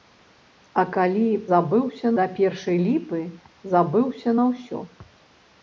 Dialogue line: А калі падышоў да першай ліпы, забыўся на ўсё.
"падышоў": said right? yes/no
no